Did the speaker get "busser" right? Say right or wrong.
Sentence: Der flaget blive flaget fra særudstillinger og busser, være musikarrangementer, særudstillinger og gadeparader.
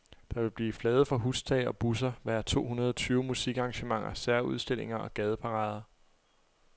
right